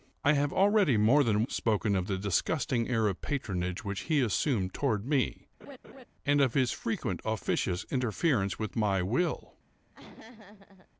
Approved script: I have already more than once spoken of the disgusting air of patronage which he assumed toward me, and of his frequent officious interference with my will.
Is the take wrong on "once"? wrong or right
wrong